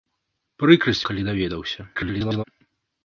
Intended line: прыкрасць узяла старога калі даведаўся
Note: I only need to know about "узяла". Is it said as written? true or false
false